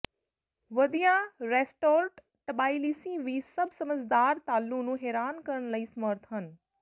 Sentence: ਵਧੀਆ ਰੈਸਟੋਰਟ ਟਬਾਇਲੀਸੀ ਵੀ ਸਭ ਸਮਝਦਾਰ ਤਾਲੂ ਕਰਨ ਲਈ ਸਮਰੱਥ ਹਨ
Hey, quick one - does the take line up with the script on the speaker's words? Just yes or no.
no